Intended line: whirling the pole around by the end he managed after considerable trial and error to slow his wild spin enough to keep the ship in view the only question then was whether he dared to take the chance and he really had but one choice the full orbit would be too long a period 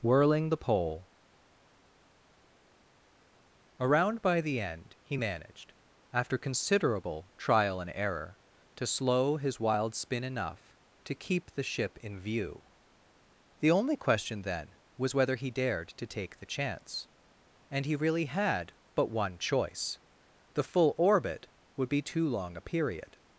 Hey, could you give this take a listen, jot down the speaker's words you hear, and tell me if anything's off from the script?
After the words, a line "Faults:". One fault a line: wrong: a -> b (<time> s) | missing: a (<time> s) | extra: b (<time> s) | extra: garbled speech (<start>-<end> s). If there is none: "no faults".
whirling the pole around by the end he managed after considerable trial and error to slow his wild spin enough to keep the ship in view the only question then was whether he dared to take the chance and he really had but one choice the full orbit would be too long a period
Faults:
no faults